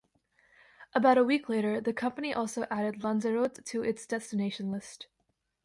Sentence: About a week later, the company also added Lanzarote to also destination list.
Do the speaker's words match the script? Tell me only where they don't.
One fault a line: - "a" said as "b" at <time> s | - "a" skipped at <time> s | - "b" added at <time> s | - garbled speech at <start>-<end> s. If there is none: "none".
- "also" said as "its" at 3.8 s